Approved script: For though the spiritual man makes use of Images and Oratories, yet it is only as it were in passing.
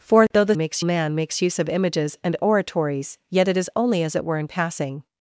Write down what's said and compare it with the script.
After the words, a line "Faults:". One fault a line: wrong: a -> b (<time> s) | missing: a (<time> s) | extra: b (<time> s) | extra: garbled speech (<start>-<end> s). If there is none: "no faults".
For though the makes man makes use of Images and Oratories, yet it is only as it were in passing.
Faults:
wrong: spiritual -> makes (0.6 s)